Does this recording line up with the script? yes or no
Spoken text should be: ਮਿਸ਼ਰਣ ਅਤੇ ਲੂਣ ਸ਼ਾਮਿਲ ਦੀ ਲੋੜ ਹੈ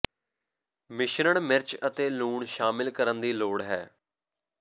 no